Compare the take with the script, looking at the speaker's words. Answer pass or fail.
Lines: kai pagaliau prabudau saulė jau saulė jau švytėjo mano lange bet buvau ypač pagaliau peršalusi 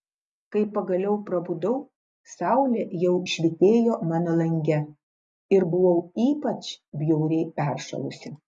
fail